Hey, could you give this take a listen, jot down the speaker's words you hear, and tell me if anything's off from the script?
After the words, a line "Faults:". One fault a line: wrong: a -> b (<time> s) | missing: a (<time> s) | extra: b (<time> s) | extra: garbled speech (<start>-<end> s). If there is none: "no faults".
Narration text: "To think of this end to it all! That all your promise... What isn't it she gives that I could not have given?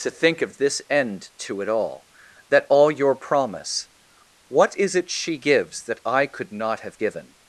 "To think of this end to it all! That all your promise... What is it she gives that I could not have given?
Faults:
wrong: isn't -> is (4.8 s)